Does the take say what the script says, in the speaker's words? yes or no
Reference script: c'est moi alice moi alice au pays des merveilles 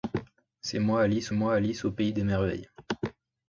yes